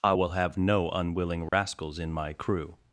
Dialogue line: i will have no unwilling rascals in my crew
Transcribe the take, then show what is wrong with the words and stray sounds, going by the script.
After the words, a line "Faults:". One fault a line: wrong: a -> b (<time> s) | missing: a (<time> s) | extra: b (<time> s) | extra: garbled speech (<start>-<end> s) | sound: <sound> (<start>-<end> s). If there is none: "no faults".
i will have no unwilling rascals in my crew
Faults:
sound: dropout (1.5-1.5 s)